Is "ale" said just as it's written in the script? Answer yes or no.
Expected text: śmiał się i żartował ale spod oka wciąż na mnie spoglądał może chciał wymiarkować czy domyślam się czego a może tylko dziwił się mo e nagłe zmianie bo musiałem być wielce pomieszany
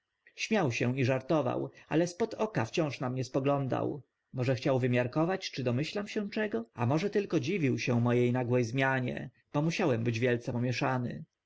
yes